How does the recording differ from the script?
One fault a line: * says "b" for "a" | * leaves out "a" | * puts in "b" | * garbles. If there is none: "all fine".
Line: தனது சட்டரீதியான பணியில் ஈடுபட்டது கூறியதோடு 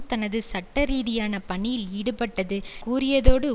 all fine